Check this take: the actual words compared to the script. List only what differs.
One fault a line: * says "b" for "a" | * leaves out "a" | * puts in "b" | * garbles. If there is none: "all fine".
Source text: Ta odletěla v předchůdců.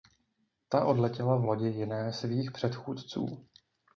* puts in "lodi jiné svých"